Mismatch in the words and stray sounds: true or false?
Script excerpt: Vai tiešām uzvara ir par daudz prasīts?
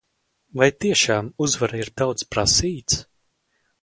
true